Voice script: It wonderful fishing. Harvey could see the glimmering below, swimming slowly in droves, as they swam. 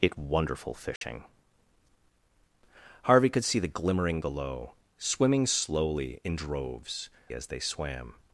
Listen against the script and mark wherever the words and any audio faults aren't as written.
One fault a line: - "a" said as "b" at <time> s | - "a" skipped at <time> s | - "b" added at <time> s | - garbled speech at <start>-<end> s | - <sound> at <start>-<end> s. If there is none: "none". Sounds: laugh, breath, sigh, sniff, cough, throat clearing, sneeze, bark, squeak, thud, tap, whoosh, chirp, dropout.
- dropout at 1.0-1.0 s